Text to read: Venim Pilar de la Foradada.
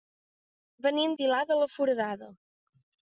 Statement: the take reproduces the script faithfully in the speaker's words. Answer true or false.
true